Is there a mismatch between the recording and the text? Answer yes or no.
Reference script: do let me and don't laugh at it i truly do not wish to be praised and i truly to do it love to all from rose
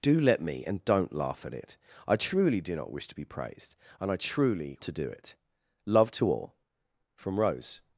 no